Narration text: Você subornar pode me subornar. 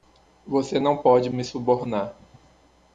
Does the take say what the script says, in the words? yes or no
no